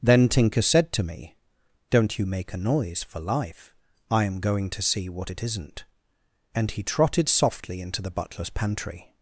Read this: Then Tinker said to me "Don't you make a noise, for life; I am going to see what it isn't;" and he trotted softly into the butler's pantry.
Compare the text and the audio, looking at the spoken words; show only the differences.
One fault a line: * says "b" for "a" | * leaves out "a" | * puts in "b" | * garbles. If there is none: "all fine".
all fine